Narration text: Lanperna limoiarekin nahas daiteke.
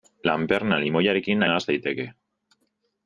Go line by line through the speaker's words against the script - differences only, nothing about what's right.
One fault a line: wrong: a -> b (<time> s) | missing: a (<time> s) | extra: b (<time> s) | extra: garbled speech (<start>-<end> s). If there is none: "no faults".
no faults